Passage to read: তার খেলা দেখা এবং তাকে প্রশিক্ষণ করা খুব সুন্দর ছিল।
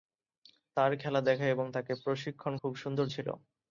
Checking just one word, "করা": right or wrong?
wrong